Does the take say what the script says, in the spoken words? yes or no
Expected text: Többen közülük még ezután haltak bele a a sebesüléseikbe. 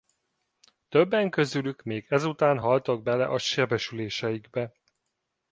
no